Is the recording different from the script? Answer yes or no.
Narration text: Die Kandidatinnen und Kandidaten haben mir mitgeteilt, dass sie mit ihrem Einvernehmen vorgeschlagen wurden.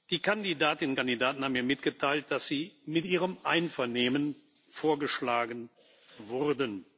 no